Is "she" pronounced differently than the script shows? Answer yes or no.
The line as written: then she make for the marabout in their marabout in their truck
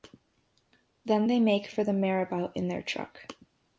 yes